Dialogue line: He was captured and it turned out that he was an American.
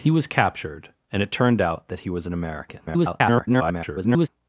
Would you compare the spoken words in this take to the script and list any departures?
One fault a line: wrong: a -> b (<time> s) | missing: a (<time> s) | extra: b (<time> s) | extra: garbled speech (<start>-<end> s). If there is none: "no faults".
extra: garbled speech (2.9-4.3 s)